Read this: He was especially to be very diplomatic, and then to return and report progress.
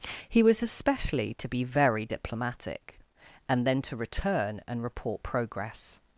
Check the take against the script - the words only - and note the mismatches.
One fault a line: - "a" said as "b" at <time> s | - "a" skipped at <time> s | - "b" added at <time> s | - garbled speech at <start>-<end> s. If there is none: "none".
none